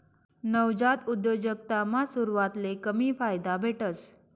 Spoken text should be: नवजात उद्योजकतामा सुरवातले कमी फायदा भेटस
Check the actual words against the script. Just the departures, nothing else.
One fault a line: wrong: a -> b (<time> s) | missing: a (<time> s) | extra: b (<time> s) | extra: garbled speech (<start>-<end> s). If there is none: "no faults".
no faults